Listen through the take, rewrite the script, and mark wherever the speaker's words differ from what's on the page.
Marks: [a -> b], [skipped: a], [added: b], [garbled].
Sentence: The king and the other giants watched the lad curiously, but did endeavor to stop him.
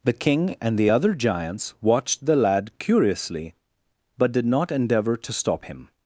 The king and the other giants watched the lad curiously, but did [added: not] endeavor to stop him.